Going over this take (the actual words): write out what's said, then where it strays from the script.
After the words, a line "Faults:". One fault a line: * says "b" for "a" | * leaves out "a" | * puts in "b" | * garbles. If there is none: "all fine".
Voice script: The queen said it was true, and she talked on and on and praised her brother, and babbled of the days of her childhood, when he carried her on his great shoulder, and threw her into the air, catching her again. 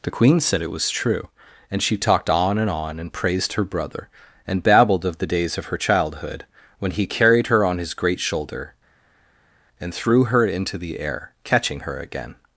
The queen said it was true, and she talked on and on and praised her brother, and babbled of the days of her childhood, when he carried her on his great shoulder, and threw her into the air, catching her again.
Faults:
all fine